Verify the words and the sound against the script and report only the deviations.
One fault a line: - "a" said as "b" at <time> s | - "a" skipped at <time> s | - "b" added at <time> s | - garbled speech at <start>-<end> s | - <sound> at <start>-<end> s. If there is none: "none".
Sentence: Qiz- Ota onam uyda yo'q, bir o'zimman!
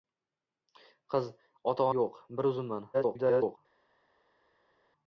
- "onam uyda" skipped at 1.9 s
- garbled speech at 2.9-3.6 s